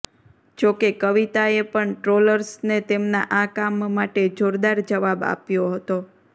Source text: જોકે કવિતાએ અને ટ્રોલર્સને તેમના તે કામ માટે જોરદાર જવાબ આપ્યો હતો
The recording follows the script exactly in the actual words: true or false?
false